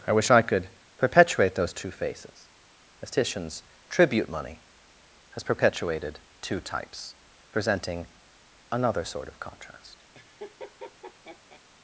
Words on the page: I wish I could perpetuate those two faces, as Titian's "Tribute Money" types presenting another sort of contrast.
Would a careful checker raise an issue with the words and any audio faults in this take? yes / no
yes